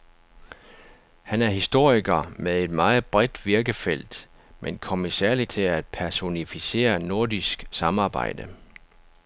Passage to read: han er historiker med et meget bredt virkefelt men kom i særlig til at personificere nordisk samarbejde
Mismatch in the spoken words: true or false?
false